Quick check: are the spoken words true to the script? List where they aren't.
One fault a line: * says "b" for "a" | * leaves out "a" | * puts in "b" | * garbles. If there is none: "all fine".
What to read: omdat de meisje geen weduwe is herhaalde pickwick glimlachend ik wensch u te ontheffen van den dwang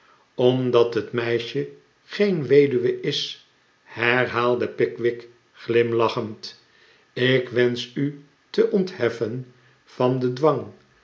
* says "het" for "de"